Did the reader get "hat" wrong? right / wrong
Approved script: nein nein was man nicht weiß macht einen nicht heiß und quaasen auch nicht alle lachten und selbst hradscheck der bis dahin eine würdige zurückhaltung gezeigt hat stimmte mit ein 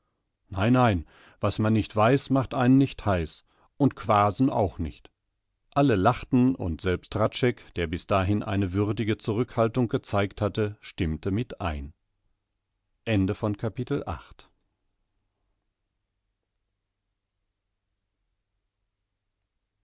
wrong